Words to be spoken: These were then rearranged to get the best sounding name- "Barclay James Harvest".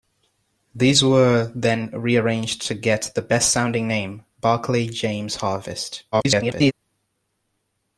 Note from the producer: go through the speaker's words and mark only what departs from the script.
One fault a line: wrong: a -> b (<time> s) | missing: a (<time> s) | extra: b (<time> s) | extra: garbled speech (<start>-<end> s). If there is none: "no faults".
extra: garbled speech (6.1-6.7 s)